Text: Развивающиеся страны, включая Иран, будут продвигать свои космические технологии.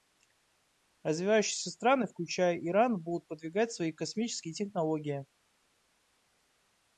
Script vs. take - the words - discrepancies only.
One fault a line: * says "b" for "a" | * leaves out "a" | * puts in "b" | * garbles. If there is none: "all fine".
all fine